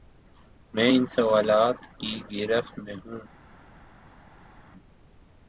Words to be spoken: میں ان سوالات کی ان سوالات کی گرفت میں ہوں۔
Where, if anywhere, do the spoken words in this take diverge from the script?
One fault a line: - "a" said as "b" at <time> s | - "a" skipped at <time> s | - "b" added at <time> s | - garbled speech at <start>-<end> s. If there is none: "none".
- "ان سوالات کی" skipped at 2.2 s